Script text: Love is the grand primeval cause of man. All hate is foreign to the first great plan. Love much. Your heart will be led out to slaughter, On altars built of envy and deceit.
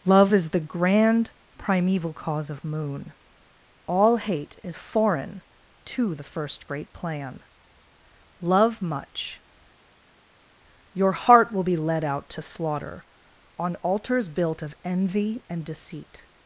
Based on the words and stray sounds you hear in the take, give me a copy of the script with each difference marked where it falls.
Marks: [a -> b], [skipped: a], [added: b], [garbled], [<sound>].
Love is the grand primeval cause of [man. -> moon] All hate is foreign to the first great plan. Love much. Your heart will be led out to slaughter, On altars built of envy and deceit.